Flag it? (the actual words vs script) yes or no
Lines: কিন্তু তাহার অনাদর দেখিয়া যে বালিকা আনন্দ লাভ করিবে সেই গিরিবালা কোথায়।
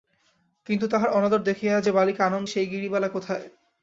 yes